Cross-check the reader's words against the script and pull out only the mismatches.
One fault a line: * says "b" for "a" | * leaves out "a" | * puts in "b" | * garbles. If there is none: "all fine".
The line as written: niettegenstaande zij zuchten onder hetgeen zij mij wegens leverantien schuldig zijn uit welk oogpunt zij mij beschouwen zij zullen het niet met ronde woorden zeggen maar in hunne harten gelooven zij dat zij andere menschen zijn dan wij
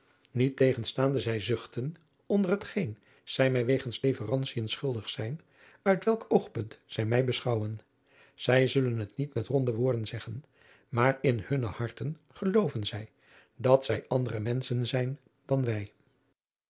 all fine